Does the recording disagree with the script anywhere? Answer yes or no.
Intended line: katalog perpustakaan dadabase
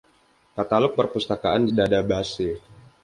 no